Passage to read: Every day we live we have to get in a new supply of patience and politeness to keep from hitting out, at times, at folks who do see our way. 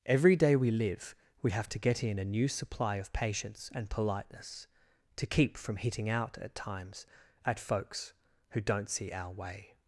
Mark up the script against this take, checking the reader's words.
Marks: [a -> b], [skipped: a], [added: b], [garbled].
Every day we live we have to get in a new supply of patience and politeness to keep from hitting out, at times, at folks who [do -> don't] see our way.